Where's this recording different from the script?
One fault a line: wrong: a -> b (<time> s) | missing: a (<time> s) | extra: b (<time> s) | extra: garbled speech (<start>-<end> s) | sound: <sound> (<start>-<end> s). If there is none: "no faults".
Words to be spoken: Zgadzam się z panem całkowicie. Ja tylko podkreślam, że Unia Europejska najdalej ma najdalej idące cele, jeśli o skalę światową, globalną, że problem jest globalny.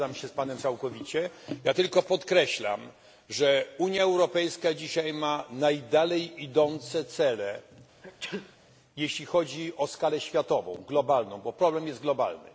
wrong: najdalej -> dzisiaj (4.7 s)
sound: sneeze (8.0-8.6 s)
extra: chodzi (9.2 s)
wrong: że -> bo (11.4 s)